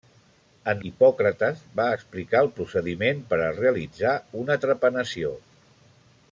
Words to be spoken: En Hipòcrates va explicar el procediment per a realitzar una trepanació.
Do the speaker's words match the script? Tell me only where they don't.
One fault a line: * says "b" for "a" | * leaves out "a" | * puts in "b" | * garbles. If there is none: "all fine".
all fine